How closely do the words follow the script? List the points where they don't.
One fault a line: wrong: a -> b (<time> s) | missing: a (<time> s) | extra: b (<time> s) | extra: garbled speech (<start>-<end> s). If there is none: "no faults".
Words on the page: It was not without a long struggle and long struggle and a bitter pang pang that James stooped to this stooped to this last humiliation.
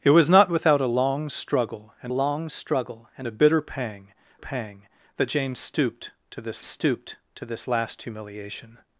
no faults